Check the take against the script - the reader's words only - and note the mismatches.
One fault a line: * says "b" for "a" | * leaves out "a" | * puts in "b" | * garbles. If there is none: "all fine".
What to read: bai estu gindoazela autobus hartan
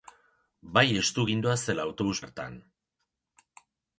all fine